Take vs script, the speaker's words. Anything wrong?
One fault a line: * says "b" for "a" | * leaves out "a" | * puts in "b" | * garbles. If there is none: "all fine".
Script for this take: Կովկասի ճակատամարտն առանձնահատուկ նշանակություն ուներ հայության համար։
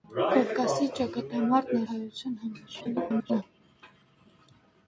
* leaves out "առանձնահատուկ նշանակություն ուներ"
* garbles